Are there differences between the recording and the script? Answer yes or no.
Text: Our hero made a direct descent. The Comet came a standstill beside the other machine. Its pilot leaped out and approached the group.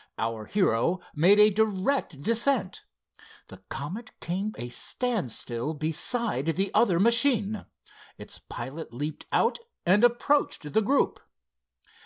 no